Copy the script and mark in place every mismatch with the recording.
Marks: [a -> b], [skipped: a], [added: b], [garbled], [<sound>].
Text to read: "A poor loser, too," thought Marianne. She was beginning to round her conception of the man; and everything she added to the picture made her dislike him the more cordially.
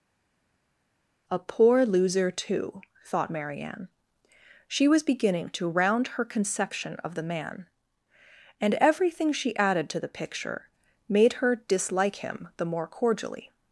"A poor loser, too," thought Marianne. She was beginning to round her conception of the man; and everything she added to the picture made her dislike him the more cordially.